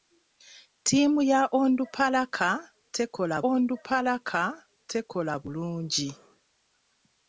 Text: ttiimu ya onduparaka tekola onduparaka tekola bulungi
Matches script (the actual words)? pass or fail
pass